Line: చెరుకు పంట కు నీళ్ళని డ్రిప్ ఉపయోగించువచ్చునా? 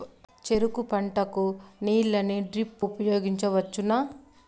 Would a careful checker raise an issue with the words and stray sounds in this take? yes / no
no